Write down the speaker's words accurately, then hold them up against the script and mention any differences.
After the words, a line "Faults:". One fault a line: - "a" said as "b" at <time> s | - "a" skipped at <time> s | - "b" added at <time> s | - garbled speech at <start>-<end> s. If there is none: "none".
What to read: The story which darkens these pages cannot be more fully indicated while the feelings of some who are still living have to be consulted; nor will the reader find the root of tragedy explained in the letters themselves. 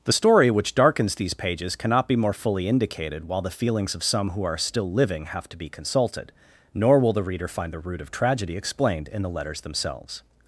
The story which darkens these pages cannot be more fully indicated while the feelings of some who are still living have to be consulted; nor will the reader find the root of tragedy explained in the letters themselves.
Faults:
none